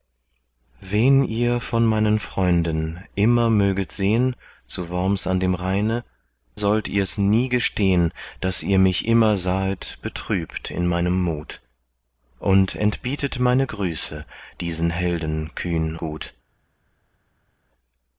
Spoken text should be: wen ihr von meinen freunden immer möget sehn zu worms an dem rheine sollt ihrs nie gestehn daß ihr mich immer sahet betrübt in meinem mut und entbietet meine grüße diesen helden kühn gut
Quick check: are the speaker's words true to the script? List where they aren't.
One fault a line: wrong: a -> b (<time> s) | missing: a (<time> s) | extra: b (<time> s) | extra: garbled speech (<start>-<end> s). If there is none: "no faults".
no faults